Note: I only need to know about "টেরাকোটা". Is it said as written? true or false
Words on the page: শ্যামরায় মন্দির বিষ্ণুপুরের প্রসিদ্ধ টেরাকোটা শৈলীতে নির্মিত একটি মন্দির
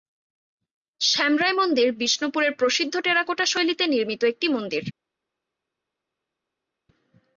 true